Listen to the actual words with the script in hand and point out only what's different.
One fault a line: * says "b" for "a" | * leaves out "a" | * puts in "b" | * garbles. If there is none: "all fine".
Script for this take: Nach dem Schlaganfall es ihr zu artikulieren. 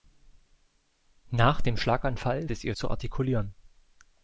all fine